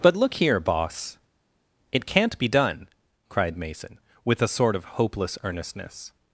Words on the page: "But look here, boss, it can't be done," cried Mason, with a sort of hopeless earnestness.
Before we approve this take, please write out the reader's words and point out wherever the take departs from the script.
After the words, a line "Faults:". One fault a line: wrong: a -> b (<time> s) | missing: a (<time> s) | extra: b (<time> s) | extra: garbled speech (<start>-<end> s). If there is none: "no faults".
"But look here, boss, it can't be done," cried Mason, with a sort of hopeless earnestness.
Faults:
no faults